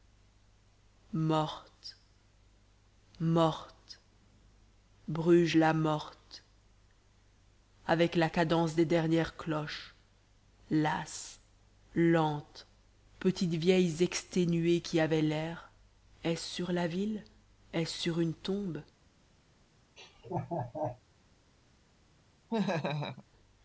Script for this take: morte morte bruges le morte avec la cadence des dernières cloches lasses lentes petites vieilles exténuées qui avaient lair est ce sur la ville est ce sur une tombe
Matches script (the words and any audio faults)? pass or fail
fail